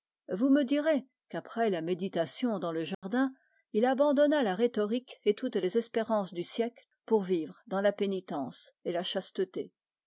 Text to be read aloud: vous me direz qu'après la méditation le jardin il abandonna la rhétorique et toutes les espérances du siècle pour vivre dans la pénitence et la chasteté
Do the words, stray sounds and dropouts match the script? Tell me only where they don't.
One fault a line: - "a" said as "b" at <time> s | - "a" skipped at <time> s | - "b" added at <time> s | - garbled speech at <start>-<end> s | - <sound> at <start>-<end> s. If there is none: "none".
- "dans" added at 2.6 s
- dropout at 2.9-3.0 s